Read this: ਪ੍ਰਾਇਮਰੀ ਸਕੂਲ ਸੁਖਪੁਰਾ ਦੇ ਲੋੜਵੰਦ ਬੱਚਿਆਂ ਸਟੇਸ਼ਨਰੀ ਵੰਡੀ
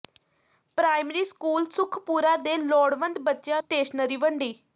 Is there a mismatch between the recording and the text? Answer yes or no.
no